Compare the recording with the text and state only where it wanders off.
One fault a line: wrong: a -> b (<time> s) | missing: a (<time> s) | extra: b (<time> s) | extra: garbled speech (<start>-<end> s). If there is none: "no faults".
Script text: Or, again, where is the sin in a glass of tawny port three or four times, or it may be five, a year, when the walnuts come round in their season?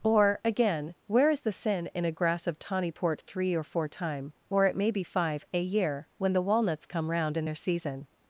wrong: glass -> grass (2.1 s)
wrong: times -> time (3.9 s)